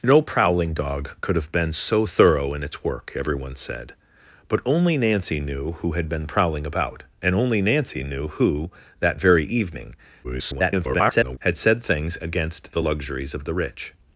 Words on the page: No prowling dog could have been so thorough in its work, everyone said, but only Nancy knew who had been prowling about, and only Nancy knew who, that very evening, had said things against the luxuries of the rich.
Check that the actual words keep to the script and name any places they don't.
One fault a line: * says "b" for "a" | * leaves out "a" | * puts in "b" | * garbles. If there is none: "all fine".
* garbles